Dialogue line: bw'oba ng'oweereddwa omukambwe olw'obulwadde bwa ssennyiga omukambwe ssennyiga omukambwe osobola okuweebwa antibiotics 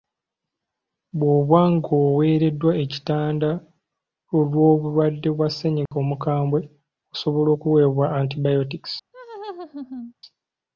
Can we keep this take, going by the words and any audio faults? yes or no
no